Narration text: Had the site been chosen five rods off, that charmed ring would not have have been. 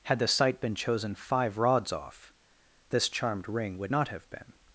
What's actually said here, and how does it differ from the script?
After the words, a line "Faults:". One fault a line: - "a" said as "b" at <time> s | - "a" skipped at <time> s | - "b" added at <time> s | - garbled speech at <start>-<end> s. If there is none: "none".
Had the site been chosen five rods off, this charmed ring would not have been.
Faults:
- "that" said as "this" at 2.9 s
- "have" skipped at 4.3 s